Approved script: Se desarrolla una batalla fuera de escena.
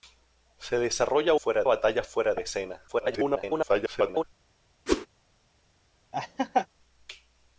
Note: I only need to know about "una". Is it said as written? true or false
false